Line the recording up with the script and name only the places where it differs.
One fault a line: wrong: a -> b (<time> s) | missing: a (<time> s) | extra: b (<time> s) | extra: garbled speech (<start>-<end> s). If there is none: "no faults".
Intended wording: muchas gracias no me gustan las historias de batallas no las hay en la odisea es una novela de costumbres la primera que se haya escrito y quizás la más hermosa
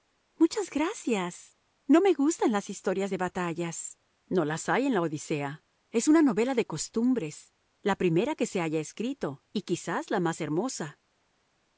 no faults